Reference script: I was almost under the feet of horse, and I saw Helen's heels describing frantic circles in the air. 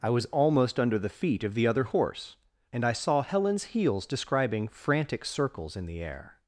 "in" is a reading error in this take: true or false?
false